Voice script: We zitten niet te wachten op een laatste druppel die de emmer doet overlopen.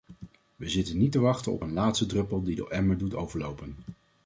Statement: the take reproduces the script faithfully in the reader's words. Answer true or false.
true